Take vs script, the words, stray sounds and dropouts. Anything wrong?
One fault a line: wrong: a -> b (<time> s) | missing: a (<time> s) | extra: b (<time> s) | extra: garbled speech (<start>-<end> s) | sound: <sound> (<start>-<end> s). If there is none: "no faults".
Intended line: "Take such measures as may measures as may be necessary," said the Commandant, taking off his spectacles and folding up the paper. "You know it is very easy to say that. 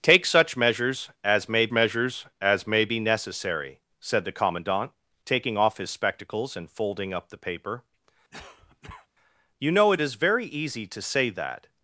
sound: cough (8.3-9.1 s)